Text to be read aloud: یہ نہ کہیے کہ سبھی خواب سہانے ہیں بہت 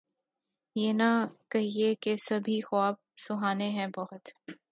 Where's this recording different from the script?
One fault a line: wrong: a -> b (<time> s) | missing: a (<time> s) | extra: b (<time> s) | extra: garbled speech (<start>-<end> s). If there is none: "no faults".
no faults